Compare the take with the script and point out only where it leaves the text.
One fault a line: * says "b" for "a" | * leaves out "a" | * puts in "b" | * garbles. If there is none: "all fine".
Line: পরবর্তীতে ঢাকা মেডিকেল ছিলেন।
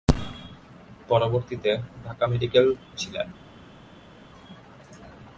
all fine